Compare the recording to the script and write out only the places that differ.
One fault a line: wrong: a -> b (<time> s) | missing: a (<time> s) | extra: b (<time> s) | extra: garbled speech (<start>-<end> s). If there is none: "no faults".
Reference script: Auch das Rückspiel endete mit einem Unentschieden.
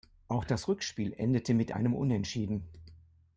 no faults